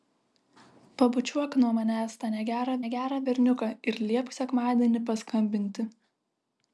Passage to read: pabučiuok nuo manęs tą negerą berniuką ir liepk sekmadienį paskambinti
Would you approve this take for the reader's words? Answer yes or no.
no